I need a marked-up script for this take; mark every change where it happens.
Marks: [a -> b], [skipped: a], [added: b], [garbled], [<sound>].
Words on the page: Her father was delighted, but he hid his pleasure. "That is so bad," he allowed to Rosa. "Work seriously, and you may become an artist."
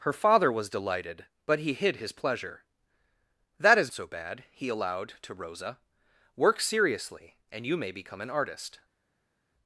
Her father was delighted, but he hid his pleasure. "That is so bad," he allowed to Rosa. "Work seriously, and you may become an artist."